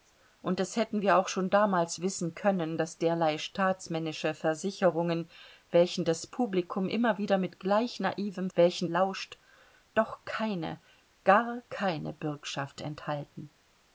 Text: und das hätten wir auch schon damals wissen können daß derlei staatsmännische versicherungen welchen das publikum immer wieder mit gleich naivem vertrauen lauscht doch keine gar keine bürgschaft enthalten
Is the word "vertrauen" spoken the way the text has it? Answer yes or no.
no